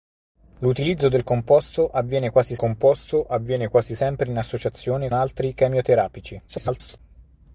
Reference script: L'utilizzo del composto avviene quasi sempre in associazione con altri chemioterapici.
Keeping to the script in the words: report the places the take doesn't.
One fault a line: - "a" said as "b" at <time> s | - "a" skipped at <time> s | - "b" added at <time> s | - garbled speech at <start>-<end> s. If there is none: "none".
- "composto avviene quasi" added at 2.5 s
- "con" skipped at 5.1 s
- garbled speech at 6.5-7.0 s